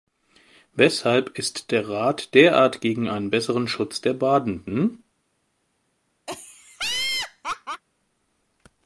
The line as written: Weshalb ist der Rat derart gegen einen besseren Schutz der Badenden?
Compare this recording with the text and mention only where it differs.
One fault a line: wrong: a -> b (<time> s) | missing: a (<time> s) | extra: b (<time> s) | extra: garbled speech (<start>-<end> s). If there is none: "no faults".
no faults